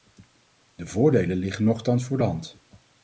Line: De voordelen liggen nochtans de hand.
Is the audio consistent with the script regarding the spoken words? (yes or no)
no